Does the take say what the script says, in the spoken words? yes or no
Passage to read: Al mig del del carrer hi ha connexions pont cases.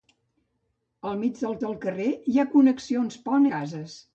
yes